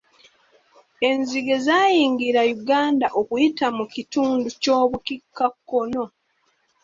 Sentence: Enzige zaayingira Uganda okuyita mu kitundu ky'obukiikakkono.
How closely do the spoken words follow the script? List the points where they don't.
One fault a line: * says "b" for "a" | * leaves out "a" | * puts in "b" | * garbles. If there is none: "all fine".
all fine